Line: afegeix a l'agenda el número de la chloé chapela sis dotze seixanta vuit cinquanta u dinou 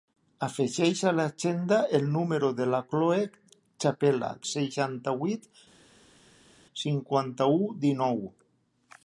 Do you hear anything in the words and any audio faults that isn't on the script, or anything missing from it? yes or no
yes